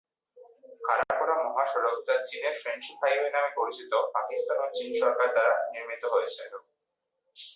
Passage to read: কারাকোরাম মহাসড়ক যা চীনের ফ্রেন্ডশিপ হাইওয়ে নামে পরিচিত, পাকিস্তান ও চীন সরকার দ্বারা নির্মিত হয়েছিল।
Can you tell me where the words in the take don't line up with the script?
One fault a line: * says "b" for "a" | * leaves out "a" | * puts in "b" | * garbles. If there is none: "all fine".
all fine